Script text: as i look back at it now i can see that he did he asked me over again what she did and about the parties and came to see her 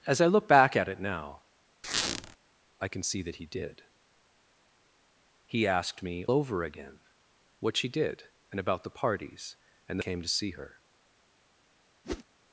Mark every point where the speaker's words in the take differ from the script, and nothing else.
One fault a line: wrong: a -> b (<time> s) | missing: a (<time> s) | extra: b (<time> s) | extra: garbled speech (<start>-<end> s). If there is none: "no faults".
no faults